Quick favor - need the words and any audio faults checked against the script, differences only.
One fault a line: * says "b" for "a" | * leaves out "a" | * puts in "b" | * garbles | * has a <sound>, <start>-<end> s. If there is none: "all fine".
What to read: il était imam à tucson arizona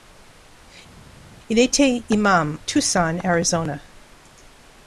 * leaves out "à"